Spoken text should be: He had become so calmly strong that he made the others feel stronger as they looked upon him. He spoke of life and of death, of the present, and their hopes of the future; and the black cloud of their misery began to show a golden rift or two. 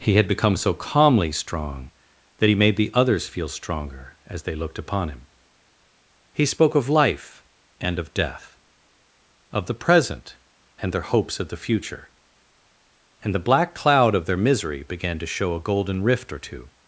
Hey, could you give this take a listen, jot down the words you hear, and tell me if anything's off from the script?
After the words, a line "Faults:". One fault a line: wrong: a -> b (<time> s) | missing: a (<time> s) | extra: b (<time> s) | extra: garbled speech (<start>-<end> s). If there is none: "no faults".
He had become so calmly strong that he made the others feel stronger as they looked upon him. He spoke of life and of death, of the present, and their hopes of the future; and the black cloud of their misery began to show a golden rift or two.
Faults:
no faults